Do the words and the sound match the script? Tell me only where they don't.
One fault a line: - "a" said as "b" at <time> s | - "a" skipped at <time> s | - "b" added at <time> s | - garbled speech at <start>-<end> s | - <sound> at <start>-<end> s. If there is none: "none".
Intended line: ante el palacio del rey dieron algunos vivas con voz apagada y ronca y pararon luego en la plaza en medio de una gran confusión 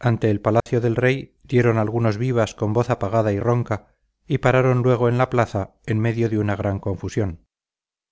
- dropout at 0.6-0.7 s